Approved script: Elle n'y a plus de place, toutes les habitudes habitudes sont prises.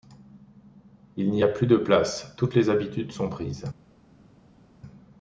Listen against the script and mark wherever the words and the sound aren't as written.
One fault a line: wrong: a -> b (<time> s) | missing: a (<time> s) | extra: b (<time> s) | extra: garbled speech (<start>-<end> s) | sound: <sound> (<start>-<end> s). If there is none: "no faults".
wrong: Elle -> Il (1.1 s)
missing: habitudes (3.1 s)